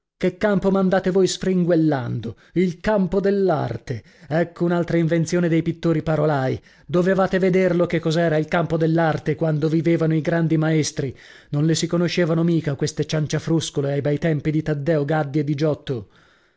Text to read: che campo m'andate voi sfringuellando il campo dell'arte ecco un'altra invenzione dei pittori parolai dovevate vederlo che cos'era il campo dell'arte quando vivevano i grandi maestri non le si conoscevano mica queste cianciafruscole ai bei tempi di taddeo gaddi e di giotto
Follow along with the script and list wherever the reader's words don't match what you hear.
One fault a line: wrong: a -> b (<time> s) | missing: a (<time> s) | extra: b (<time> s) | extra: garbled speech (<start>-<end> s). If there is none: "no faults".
no faults